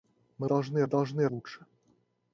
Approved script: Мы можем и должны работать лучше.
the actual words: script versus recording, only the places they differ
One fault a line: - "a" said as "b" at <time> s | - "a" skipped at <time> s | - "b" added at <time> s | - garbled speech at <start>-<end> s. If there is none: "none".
- "можем" said as "должны" at 0.4 s
- "работать" skipped at 1.3 s